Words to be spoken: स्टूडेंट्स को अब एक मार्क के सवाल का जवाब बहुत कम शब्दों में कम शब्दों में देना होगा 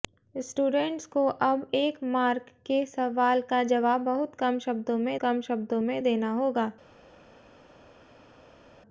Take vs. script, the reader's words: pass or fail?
pass